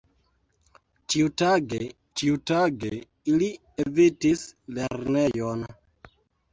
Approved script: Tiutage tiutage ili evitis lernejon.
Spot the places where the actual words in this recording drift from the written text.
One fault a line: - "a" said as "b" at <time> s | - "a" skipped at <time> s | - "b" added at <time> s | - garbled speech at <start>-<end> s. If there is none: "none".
none